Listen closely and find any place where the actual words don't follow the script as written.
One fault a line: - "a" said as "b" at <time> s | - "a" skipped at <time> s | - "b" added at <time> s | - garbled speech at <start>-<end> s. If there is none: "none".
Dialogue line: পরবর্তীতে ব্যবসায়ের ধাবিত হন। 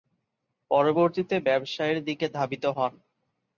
- "দিকে" added at 2.0 s